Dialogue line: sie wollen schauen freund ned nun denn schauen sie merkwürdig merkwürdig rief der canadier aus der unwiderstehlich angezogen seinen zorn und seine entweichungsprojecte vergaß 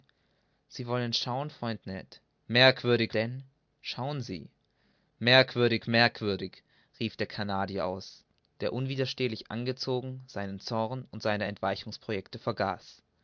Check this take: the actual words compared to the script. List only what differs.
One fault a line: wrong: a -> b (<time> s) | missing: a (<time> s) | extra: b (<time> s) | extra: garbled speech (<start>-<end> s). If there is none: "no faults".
wrong: nun -> merkwürdig (2.5 s)